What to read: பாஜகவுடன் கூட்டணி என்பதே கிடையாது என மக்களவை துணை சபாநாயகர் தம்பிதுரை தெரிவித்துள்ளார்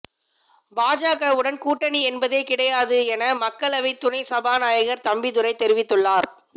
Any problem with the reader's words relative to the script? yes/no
no